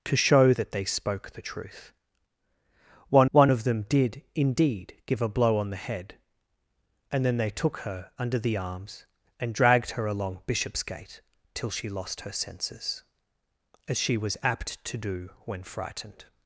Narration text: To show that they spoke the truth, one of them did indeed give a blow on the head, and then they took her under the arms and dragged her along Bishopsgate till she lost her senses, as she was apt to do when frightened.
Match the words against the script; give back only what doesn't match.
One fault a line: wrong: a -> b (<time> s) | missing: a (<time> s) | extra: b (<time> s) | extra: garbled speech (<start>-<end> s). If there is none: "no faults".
extra: one (3.3 s)